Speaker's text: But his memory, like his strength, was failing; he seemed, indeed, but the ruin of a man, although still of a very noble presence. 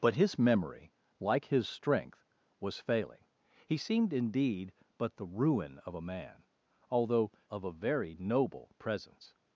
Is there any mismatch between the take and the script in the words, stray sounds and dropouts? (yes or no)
yes